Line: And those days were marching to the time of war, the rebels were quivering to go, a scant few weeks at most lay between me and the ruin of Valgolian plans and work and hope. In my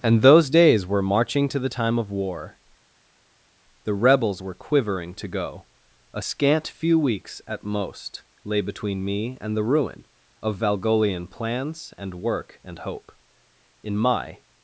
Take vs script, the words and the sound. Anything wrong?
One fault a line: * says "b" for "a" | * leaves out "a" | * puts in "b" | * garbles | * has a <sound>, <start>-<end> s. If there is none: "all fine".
all fine